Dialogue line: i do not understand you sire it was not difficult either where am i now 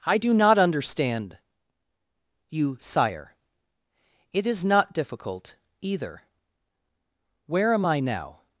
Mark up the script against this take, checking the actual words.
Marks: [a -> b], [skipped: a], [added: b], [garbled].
i do not understand you sire it [was -> is] not difficult either where am i now